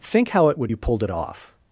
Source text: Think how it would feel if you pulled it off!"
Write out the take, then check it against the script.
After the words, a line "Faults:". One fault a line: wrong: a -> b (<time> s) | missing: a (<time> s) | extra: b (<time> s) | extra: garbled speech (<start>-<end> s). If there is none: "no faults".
Think how it would you pulled it off!"
Faults:
missing: feel if (0.7 s)